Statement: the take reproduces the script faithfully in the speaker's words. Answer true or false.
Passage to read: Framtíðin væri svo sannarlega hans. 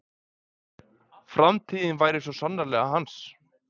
true